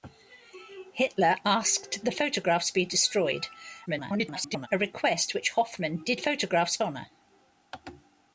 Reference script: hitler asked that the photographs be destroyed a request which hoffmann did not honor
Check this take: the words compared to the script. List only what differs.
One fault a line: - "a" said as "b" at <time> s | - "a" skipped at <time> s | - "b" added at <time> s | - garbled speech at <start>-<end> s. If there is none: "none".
- "that" skipped at 2.0 s
- garbled speech at 3.9-4.7 s
- "not" said as "photographs" at 6.2 s